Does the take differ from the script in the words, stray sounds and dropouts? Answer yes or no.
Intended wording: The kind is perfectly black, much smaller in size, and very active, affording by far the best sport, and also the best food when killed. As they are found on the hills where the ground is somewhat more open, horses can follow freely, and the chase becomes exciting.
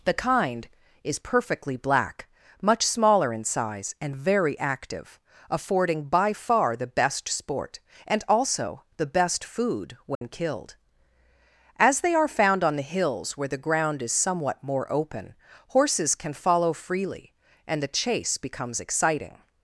yes